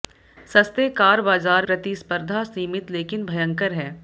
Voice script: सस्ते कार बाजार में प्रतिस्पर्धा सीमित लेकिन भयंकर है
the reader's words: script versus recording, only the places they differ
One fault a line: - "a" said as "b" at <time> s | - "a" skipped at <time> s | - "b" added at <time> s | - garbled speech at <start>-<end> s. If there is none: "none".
- "में" skipped at 1.6 s